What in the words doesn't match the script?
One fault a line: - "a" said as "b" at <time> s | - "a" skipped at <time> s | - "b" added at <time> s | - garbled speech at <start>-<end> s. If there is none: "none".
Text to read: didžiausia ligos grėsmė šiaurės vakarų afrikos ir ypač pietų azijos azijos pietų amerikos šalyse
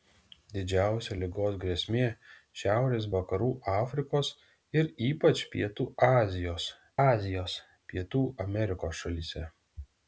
none